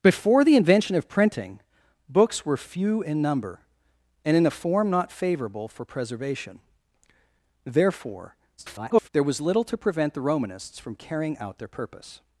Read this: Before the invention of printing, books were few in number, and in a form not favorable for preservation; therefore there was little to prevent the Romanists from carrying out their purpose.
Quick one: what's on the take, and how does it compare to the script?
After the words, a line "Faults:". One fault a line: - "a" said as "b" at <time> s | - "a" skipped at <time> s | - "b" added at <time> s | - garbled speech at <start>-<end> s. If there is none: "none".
Before the invention of printing, books were few in number, and in a form not favorable for preservation; therefore [garbled] there was little to prevent the Romanists from carrying out their purpose.
Faults:
- garbled speech at 8.6-9.1 s